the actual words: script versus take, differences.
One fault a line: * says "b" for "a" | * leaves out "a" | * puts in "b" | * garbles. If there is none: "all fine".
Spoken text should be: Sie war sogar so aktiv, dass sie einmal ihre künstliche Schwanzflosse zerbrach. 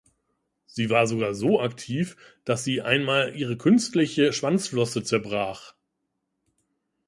all fine